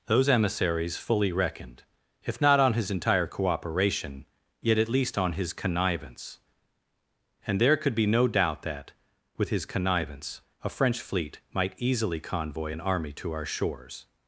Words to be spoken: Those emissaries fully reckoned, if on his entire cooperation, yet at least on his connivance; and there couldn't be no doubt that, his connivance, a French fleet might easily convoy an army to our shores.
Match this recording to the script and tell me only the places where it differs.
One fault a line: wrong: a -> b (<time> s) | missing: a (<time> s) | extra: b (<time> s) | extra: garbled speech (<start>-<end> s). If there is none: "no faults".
extra: not (2.4 s)
wrong: couldn't -> could (7.8 s)
extra: with (9.4 s)